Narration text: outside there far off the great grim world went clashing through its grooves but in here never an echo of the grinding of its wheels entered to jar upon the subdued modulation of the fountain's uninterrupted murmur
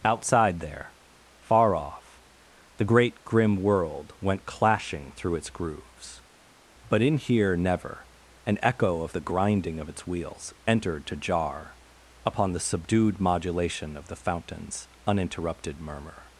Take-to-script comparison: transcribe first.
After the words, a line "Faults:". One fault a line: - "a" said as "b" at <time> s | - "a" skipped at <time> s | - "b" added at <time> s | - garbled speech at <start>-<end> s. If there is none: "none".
outside there far off the great grim world went clashing through its grooves but in here never an echo of the grinding of its wheels entered to jar upon the subdued modulation of the fountain's uninterrupted murmur
Faults:
none